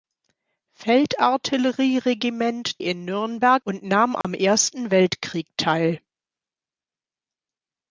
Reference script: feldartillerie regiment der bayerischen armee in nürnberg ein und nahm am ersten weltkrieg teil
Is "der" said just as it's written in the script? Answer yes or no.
no